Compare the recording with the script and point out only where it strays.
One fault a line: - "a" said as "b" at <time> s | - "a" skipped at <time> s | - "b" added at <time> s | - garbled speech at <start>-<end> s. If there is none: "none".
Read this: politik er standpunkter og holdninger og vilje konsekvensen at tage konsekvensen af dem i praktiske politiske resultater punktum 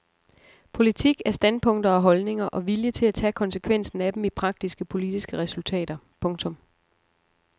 - "konsekvensen" said as "til" at 2.9 s